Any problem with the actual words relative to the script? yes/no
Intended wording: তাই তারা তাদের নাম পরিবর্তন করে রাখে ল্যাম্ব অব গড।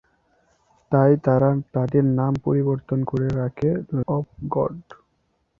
yes